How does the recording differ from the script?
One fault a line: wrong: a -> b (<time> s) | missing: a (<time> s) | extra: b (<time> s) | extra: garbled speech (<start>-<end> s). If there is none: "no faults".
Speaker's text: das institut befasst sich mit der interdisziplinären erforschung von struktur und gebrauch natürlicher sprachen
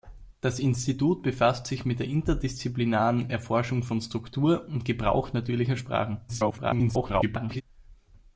extra: garbled speech (6.3-7.6 s)